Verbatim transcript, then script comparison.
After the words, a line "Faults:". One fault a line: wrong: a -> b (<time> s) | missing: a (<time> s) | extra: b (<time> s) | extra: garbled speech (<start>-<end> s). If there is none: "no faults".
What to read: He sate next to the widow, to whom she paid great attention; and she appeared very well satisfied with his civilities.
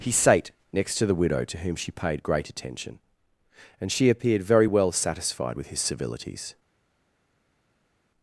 He sate next to the widow, to whom she paid great attention; and she appeared very well satisfied with his civilities.
Faults:
no faults